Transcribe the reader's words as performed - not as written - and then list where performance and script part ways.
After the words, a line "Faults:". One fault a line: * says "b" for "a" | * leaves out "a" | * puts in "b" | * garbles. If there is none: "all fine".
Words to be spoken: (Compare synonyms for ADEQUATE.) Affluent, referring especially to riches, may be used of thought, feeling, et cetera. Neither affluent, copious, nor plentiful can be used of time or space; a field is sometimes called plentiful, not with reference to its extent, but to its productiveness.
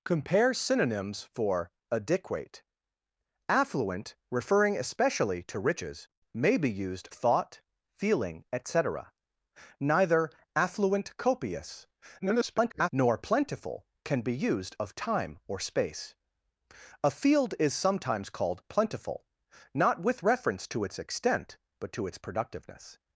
(Compare synonyms for ADEQUATE.) Affluent, referring especially to riches, may be used thought, feeling, et cetera. Neither affluent, copious, [garbled] nor plentiful can be used of time or space; a field is sometimes called plentiful, not with reference to its extent, but to its productiveness.
Faults:
* leaves out "of"
* garbles